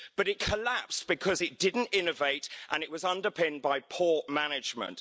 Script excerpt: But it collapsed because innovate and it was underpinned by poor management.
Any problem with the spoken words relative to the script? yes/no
yes